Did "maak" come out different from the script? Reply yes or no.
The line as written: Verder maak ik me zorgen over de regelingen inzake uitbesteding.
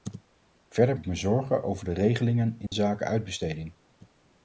yes